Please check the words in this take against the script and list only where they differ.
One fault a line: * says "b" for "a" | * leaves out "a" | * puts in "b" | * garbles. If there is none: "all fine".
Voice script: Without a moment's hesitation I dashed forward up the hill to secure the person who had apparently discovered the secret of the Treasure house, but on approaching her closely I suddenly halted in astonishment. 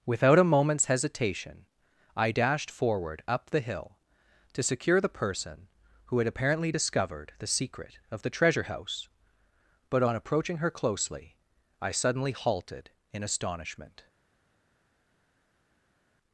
all fine